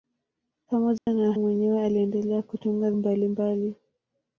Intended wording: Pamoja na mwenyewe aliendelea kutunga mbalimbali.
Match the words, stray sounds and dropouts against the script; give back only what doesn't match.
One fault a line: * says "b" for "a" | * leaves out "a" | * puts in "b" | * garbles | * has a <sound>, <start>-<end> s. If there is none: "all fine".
* has a dropout, 1.0-1.1 s